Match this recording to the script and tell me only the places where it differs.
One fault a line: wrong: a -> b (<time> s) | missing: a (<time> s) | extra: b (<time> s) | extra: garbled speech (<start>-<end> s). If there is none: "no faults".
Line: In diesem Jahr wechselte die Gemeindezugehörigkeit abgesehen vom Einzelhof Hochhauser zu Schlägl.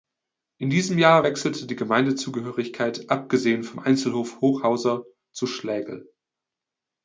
no faults